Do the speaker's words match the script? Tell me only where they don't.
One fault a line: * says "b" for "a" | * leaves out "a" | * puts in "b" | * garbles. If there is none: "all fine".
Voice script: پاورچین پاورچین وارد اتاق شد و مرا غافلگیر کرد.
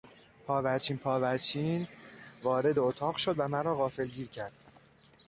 all fine